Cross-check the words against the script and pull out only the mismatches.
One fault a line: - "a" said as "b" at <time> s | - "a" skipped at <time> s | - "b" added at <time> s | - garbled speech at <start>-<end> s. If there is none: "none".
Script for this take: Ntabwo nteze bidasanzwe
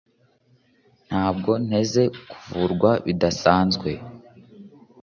- "kuvurwa" added at 2.3 s